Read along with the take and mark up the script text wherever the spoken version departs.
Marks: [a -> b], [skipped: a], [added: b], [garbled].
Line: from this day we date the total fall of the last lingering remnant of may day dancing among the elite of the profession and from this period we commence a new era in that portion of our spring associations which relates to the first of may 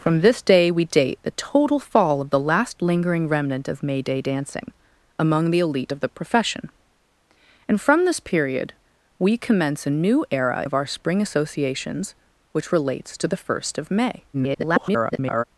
from this day we date the total fall of the last lingering remnant of may day dancing among the elite of the profession and from this period we commence a new era [skipped: in that portion] of our spring associations which relates to the first of may [garbled]